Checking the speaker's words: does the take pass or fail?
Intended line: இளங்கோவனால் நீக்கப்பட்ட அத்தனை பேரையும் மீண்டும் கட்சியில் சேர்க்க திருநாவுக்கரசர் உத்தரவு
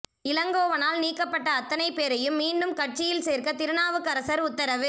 pass